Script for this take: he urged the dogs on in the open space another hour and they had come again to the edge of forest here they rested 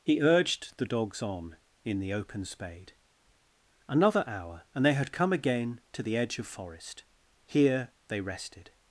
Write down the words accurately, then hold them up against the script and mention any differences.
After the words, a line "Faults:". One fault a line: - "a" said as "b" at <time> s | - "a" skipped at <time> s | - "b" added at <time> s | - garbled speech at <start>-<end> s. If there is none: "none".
he urged the dogs on in the open spade another hour and they had come again to the edge of forest here they rested
Faults:
- "space" said as "spade" at 2.5 s